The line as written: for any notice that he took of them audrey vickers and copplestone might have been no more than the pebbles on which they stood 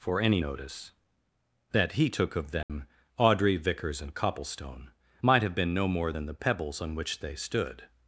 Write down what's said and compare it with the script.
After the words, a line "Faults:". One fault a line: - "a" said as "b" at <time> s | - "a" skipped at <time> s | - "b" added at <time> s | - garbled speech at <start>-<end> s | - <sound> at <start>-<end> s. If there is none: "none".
for any notice that he took of them audrey vickers and copplestone might have been no more than the pebbles on which they stood
Faults:
- dropout at 2.6-2.7 s